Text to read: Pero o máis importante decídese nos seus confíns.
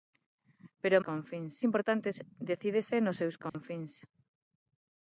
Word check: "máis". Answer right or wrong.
wrong